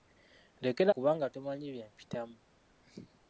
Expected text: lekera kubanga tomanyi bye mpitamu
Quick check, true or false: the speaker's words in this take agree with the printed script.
true